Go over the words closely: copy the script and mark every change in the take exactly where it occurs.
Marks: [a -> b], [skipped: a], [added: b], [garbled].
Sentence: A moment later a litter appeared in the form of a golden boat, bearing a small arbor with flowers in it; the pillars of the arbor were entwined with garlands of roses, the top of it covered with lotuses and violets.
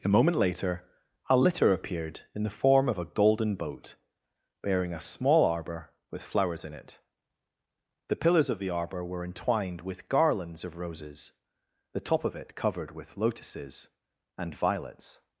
A moment later a litter appeared in the form of a golden boat, bearing a small arbor with flowers in it; the pillars of the arbor were entwined with garlands of roses, the top of it covered with lotuses and violets.